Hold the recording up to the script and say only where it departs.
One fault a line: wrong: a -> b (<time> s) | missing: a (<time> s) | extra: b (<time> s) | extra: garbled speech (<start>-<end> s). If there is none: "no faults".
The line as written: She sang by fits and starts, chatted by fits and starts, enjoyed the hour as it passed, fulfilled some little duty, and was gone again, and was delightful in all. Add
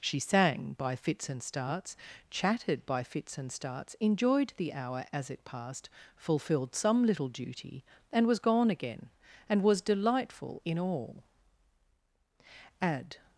no faults